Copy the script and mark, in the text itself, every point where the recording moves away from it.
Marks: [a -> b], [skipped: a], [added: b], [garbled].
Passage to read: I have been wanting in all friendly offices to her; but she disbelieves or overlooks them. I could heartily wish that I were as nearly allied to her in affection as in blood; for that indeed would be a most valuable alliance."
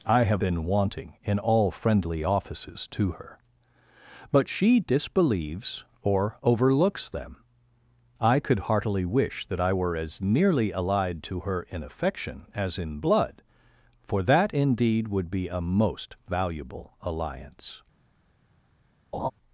I have been wanting in all friendly offices to her; but she disbelieves or overlooks them. I could heartily wish that I were as nearly allied to her in affection as in blood; for that indeed would be a most valuable alliance."